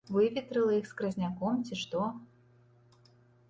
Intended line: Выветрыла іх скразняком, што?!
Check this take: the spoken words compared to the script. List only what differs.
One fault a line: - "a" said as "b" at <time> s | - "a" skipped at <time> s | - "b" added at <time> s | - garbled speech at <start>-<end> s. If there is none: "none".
- "ці" added at 1.7 s